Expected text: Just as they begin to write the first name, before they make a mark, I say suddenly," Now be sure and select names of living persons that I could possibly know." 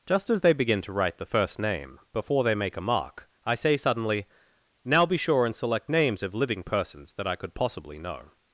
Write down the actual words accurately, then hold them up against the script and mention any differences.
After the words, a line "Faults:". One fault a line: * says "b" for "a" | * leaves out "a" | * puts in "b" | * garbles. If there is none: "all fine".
Just as they begin to write the first name, before they make a mark, I say suddenly," Now be sure and select names of living persons that I could possibly know."
Faults:
all fine